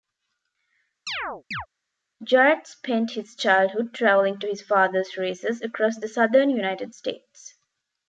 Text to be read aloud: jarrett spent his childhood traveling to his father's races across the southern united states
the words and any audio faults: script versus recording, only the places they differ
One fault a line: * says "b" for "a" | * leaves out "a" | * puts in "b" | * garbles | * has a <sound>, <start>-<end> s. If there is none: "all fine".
* has a chirp, 1.1-1.7 s